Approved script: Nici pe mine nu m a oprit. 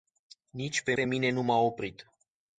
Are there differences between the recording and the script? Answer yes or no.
yes